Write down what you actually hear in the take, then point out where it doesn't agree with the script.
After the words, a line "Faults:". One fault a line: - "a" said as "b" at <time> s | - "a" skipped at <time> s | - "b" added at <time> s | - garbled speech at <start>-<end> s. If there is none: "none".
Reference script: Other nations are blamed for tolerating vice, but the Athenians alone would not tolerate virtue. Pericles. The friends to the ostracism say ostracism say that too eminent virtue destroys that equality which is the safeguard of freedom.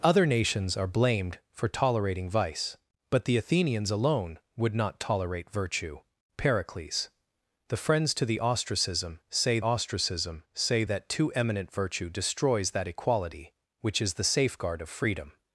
Other nations are blamed for tolerating vice, but the Athenians alone would not tolerate virtue. Pericles. The friends to the ostracism say ostracism say that too eminent virtue destroys that equality which is the safeguard of freedom.
Faults:
none